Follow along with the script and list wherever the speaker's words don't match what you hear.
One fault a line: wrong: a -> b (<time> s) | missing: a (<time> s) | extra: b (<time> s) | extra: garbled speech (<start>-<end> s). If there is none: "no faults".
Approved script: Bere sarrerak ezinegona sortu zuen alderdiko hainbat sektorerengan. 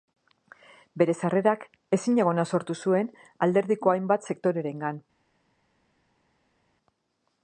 no faults